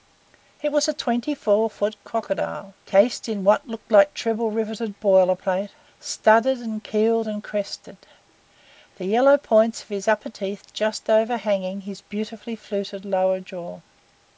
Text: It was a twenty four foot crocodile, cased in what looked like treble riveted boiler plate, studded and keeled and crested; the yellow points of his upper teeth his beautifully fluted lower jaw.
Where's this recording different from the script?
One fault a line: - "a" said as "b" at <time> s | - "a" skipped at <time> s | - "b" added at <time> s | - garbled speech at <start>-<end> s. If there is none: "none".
- "just overhanging" added at 10.7 s